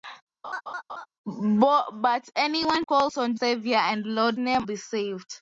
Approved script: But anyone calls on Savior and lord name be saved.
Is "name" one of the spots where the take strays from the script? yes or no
no